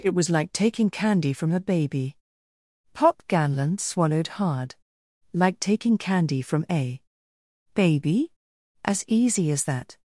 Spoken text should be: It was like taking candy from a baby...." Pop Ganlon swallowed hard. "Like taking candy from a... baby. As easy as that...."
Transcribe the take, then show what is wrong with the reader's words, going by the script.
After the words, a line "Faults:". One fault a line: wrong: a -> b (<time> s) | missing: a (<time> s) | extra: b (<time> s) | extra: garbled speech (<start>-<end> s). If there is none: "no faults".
It was like taking candy from a baby...." Pop Ganlon swallowed hard. "Like taking candy from a... baby. As easy as that...."
Faults:
no faults